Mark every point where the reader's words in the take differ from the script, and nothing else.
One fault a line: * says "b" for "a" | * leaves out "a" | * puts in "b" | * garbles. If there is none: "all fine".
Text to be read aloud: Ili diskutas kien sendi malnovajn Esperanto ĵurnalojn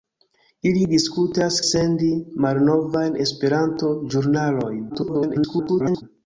* leaves out "kien"
* garbles